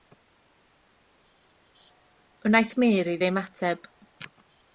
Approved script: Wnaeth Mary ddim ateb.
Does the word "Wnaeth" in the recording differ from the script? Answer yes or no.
no